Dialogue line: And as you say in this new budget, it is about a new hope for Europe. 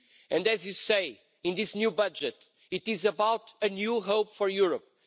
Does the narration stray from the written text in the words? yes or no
no